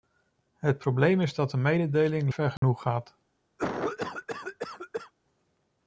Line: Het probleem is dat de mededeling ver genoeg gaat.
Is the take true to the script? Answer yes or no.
yes